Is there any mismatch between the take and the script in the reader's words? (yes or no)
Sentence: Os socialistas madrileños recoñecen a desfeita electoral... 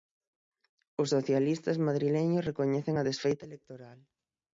no